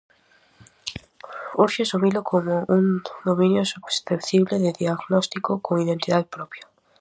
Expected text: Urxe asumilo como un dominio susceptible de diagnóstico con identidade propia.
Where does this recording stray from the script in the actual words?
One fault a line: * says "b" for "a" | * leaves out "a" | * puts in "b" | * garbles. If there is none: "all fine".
all fine